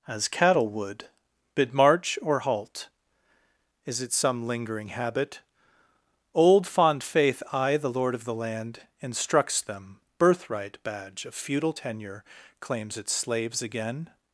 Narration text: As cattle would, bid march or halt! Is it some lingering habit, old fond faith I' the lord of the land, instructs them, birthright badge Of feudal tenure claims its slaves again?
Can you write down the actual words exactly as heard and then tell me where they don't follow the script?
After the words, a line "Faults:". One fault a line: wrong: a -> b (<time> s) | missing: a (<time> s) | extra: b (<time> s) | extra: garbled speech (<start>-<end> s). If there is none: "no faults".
As cattle would, bid march or halt! Is it some lingering habit, old fond faith I' the lord of the land, instructs them, birthright badge Of feudal tenure claims its slaves again?
Faults:
no faults